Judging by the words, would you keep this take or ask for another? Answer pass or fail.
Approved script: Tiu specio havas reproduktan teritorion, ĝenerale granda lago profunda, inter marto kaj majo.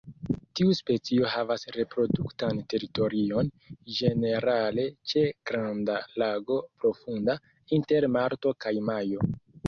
fail